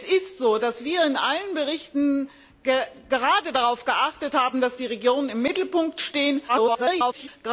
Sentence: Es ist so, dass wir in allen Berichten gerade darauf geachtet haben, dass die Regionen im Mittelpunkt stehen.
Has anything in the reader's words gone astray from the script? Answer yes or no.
yes